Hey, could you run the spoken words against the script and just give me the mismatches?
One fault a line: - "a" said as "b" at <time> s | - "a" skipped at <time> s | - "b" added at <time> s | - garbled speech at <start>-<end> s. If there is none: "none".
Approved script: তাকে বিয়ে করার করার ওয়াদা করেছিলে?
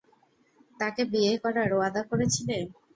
- "করার" skipped at 1.7 s